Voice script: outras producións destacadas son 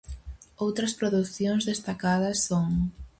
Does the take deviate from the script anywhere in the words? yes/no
no